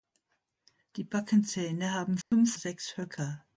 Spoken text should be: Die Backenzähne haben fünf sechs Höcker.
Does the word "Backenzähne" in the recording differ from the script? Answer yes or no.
no